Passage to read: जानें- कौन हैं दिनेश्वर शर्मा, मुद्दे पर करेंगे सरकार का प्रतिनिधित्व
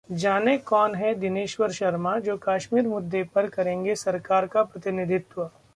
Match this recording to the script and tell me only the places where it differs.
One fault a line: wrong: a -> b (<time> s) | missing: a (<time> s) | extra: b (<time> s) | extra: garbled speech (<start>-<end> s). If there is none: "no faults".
extra: जो कश्मीर (2.2 s)